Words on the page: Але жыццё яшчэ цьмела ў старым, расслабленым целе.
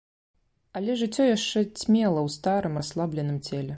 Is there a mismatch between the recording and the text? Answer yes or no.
no